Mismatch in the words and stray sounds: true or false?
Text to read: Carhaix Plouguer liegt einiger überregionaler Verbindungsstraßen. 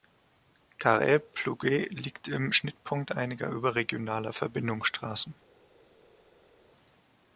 true